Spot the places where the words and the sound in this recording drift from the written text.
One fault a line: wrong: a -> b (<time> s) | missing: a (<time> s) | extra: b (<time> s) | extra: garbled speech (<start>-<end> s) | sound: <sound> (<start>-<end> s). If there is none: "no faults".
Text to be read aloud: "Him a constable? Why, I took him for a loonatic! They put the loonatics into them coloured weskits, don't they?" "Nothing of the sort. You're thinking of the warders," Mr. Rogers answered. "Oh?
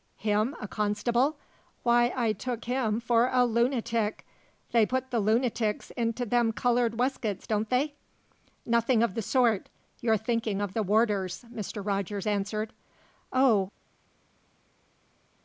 no faults